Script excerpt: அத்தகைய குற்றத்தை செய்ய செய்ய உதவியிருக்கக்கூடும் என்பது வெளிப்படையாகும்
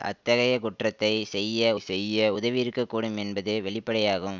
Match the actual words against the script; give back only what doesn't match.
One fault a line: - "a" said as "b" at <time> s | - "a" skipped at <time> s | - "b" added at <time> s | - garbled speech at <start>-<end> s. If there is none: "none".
none